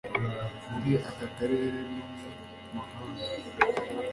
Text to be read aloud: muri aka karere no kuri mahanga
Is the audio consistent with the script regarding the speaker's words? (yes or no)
no